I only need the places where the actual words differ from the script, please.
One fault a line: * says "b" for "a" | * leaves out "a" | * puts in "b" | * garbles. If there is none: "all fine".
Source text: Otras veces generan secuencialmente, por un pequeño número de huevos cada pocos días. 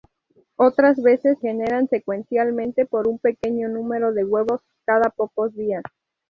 all fine